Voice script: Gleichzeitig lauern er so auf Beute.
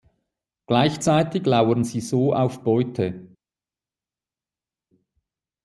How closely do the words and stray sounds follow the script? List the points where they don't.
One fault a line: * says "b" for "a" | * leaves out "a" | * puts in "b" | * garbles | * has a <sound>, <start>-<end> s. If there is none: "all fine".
* says "sie" for "er"